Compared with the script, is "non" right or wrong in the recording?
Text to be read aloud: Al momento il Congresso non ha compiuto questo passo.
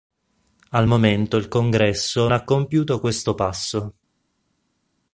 wrong